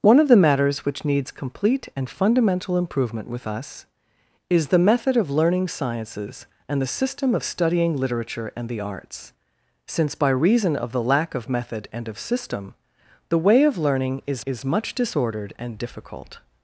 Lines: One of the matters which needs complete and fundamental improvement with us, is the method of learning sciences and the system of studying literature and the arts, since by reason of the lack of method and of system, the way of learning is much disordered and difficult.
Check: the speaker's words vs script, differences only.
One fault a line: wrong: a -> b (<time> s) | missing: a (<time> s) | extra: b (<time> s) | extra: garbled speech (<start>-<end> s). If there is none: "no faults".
extra: is (14.4 s)